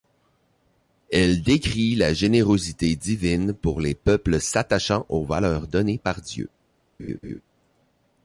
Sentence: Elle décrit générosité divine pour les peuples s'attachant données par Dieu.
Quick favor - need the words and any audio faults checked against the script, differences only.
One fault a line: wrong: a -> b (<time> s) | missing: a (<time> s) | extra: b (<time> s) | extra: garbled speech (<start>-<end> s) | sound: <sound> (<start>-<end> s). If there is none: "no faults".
extra: la (1.9 s)
extra: aux valeurs (5.1 s)
sound: laugh (7.0-7.4 s)